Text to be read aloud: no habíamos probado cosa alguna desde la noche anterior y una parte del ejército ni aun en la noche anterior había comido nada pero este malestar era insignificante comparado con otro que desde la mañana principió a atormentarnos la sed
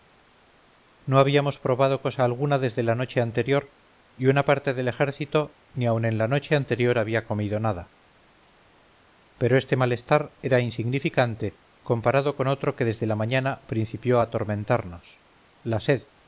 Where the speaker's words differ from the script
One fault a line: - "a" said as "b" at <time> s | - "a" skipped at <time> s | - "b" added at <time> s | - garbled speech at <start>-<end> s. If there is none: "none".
none